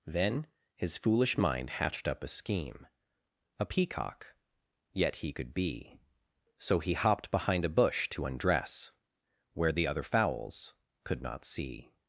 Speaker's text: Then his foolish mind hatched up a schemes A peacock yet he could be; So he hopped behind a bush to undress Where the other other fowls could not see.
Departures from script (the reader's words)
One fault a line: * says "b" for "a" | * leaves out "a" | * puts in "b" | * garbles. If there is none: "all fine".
* says "scheme" for "schemes"
* leaves out "other"